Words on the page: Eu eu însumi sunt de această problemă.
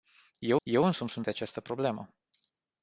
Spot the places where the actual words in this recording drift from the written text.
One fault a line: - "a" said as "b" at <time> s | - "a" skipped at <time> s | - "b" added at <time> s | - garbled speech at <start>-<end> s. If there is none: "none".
none